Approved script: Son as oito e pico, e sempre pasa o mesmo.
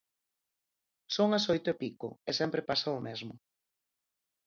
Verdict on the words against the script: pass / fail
pass